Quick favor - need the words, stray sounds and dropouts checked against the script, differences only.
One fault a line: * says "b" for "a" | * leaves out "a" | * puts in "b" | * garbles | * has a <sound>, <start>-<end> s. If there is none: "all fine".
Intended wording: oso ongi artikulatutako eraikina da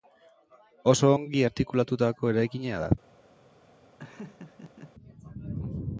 * has a laugh, 4.0-4.9 s